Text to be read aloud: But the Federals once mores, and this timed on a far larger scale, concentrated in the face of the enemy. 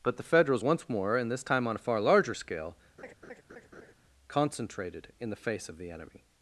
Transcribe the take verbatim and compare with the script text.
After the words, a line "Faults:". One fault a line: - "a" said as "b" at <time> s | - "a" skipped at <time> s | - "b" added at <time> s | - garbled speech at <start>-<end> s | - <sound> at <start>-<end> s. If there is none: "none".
But the Federals once more, and this time on a far larger scale, concentrated in the face of the enemy.
Faults:
- "mores" said as "more" at 0.9 s
- "timed" said as "time" at 1.4 s
- laugh at 3.0-3.9 s